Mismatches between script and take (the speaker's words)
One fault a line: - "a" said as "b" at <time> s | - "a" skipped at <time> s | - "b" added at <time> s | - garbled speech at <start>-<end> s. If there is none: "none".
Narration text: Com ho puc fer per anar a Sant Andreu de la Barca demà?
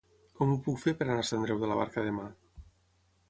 - "Sant" skipped at 1.3 s